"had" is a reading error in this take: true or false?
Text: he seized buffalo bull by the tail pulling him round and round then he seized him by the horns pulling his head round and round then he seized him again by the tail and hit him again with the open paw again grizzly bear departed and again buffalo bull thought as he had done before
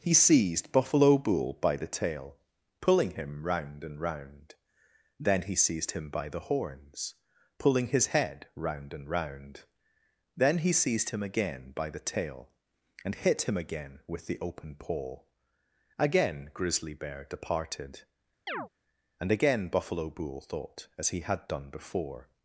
false